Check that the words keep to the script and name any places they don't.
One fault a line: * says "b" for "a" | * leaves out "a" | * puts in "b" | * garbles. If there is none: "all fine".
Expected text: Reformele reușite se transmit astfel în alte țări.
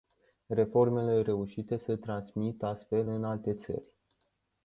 all fine